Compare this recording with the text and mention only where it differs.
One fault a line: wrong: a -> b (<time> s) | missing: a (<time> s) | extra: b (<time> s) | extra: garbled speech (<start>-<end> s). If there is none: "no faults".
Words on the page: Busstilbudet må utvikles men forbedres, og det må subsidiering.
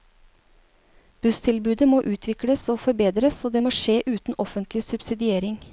wrong: men -> og (2.7 s)
extra: skje uten offentlig (3.7 s)